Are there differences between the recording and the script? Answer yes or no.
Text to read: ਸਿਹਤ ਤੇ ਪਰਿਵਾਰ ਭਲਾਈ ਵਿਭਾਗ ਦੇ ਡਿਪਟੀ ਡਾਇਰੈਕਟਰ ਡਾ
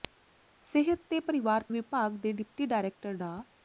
yes